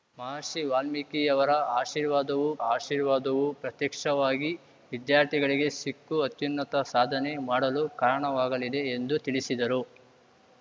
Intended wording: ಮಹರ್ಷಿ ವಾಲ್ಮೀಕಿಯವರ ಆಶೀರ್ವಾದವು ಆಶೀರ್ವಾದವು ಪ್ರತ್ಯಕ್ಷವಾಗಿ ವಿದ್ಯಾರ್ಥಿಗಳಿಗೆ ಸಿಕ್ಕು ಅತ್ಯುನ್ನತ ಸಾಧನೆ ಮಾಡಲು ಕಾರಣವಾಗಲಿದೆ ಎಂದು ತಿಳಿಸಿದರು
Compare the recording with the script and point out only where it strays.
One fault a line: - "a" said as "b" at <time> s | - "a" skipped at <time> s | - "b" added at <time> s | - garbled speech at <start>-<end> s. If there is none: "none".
none